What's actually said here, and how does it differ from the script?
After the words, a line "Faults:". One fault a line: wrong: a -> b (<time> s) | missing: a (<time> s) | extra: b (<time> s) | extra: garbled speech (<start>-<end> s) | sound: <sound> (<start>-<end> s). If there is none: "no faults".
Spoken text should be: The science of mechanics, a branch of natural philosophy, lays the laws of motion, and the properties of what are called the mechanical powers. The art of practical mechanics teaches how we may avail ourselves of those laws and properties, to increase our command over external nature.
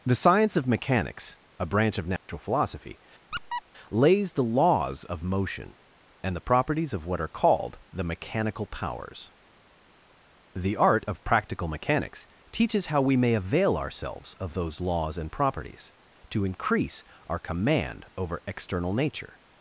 The science of mechanics, a branch of natural philosophy, lays the laws of motion, and the properties of what are called the mechanical powers. The art of practical mechanics teaches how we may avail ourselves of those laws and properties, to increase our command over external nature.
Faults:
sound: dropout (2.2-2.3 s)
sound: squeak (3.3-3.6 s)